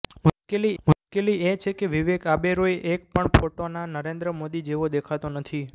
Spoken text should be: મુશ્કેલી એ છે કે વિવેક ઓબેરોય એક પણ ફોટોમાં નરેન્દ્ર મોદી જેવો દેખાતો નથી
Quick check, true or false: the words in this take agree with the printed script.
false